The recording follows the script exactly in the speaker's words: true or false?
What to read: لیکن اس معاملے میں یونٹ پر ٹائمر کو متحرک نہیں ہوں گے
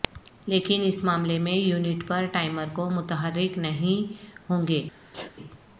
true